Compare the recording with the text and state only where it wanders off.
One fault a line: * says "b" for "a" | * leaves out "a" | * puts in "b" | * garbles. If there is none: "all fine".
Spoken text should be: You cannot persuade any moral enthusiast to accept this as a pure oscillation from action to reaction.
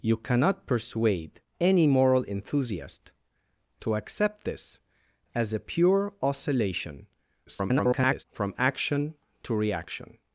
* garbles